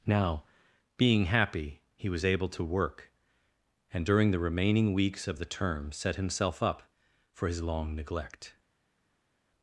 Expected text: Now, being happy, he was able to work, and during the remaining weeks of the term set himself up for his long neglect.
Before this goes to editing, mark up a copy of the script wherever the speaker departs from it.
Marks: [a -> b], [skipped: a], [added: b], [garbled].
Now, being happy, he was able to work, and during the remaining weeks of the term set himself up for his long neglect.